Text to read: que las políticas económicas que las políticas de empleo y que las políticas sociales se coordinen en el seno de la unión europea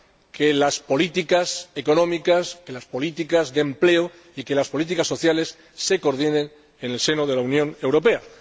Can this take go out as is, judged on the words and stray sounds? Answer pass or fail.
pass